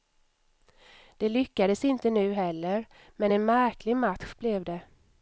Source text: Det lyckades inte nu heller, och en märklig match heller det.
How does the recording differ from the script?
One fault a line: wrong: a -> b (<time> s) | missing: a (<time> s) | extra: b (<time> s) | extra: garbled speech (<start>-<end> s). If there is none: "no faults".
wrong: och -> men (3.1 s)
wrong: heller -> blev (4.3 s)